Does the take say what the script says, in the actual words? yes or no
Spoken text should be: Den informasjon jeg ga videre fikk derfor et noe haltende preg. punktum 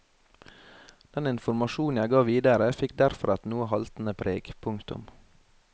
yes